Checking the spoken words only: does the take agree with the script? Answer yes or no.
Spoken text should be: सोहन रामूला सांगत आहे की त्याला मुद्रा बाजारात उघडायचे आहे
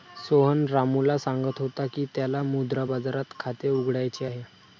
no